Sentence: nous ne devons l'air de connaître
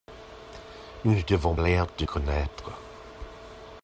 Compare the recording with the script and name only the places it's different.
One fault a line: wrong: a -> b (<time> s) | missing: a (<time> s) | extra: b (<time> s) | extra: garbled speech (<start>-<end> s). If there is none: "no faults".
no faults